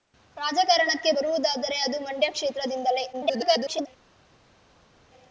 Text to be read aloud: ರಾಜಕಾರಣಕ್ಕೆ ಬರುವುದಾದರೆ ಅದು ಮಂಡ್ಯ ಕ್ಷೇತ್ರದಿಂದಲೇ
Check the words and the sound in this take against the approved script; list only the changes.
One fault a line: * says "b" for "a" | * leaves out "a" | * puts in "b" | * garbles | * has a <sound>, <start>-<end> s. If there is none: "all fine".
* garbles